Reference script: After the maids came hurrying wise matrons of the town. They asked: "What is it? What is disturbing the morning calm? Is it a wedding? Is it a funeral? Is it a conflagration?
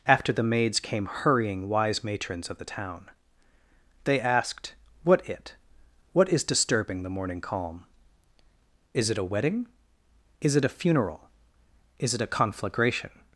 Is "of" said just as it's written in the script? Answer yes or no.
yes